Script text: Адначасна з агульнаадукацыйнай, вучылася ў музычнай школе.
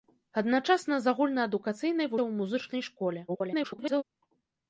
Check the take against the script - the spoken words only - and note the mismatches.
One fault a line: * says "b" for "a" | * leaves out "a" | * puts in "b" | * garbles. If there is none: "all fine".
* leaves out "вучылася"
* garbles